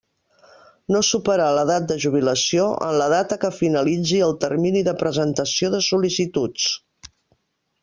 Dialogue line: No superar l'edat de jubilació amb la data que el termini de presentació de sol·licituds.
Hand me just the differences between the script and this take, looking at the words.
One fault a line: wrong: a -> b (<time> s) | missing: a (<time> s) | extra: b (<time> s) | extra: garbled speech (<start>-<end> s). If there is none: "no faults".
wrong: amb -> en (2.9 s)
extra: finalitzi (3.6 s)